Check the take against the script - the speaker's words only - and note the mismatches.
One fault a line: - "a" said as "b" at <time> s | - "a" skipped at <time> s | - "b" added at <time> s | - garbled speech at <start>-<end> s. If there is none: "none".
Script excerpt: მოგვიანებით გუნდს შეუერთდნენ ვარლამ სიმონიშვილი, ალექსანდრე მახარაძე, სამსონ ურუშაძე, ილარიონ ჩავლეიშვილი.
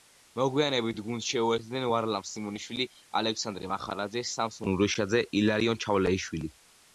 none